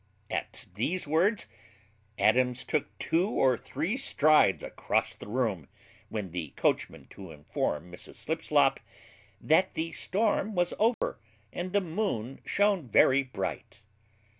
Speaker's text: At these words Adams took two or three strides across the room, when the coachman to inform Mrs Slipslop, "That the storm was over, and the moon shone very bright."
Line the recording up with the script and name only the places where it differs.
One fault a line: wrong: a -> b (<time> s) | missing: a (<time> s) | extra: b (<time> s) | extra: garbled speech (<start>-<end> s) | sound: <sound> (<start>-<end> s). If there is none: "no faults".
sound: dropout (10.9-11.0 s)